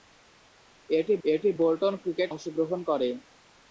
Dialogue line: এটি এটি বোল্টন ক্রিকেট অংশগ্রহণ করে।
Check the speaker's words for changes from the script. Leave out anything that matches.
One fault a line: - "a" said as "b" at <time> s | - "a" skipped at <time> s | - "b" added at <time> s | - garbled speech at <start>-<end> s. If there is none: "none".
none